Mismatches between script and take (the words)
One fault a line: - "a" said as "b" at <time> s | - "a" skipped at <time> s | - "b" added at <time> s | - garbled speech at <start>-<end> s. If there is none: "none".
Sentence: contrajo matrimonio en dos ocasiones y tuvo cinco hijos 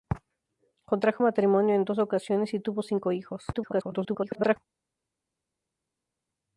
- garbled speech at 3.5-4.6 s